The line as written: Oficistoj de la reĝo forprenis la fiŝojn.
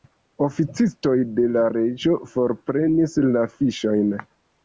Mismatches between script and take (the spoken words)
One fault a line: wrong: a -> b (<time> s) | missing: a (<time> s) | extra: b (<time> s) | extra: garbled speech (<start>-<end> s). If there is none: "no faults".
no faults